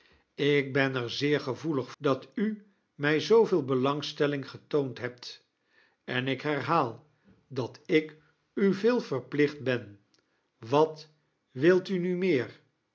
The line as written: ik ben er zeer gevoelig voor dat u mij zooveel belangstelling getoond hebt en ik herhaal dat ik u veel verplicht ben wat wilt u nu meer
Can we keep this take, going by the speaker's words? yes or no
no